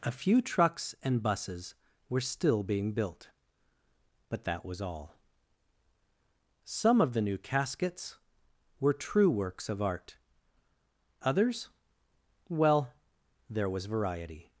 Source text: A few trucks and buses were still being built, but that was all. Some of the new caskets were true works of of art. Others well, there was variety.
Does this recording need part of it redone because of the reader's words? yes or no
yes